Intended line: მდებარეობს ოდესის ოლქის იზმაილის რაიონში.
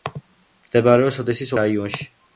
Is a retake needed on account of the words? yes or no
yes